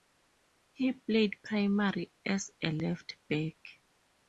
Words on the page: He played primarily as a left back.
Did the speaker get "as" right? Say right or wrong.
right